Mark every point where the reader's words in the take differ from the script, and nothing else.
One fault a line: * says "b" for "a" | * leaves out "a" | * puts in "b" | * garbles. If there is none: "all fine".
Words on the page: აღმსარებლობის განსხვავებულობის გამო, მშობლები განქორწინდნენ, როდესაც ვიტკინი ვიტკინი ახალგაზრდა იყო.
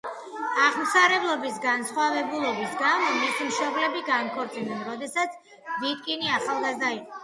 * puts in "მისი"
* leaves out "ვიტკინი"